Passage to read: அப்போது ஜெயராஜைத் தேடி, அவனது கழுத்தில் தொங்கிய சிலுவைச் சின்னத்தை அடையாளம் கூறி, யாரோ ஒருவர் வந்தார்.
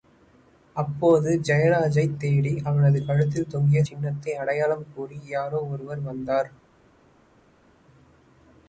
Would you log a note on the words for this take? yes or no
yes